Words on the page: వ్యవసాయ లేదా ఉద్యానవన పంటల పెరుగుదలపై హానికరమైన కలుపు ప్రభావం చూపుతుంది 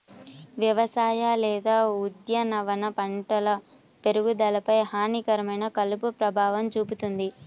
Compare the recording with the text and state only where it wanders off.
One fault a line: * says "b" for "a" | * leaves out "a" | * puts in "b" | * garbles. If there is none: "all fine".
all fine